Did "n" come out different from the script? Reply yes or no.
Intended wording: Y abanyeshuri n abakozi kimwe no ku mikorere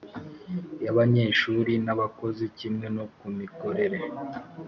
no